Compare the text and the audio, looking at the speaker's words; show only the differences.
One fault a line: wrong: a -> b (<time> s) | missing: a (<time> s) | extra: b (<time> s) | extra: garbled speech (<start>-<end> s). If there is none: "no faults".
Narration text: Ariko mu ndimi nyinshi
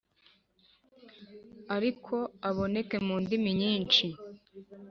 extra: aboneke (2.5 s)